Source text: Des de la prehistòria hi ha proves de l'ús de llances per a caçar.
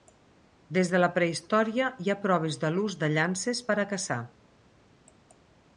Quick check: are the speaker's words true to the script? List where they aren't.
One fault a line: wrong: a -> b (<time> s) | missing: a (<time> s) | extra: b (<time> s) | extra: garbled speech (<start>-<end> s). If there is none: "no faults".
no faults